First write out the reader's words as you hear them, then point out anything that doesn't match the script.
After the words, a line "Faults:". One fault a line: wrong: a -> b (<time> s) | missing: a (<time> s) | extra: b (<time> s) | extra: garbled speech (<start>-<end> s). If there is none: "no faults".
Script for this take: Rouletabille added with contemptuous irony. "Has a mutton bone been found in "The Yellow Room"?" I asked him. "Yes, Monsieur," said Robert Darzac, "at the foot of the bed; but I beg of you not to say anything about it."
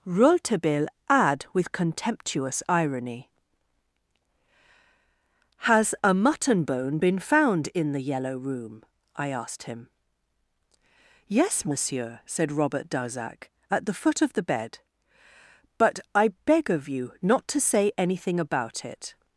Rouletabille add with contemptuous irony. "Has a mutton bone been found in "The Yellow Room"?" I asked him. "Yes, Monsieur," said Robert Darzac, "at the foot of the bed; but I beg of you not to say anything about it."
Faults:
wrong: added -> add (1.1 s)